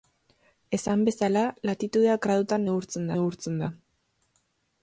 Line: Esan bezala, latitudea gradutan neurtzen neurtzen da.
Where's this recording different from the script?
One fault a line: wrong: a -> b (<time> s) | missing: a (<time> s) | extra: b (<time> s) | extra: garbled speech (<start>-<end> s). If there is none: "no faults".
no faults